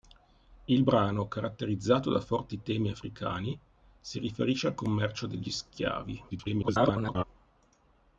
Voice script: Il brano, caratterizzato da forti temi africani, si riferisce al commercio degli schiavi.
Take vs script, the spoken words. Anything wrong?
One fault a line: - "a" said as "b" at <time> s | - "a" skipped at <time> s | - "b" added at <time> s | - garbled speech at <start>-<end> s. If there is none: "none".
- garbled speech at 6.3-7.2 s